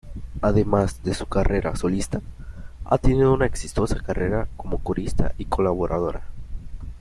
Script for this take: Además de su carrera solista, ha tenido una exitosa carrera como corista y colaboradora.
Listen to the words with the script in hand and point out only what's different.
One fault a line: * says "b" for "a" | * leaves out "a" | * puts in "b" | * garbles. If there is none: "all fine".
all fine